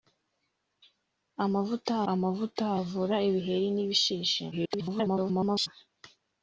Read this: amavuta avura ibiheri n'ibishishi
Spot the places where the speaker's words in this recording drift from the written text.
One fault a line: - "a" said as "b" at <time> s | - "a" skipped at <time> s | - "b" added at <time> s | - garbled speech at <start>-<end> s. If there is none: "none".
- "amavuta" added at 2.1 s
- garbled speech at 4.5-5.7 s